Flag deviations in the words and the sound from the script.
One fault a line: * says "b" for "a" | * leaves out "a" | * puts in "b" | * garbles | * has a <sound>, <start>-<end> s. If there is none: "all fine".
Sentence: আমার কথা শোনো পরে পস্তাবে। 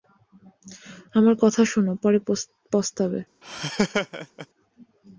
* has a laugh, 3.4-4.5 s